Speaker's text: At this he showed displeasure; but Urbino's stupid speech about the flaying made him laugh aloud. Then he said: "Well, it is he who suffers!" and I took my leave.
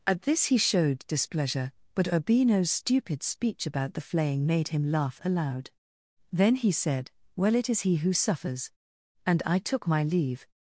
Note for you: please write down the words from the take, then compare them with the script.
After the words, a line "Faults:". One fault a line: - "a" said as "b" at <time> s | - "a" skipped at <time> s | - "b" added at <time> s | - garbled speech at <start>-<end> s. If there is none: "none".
At this he showed displeasure; but Urbino's stupid speech about the flaying made him laugh aloud. Then he said: "Well, it is he who suffers!" and I took my leave.
Faults:
none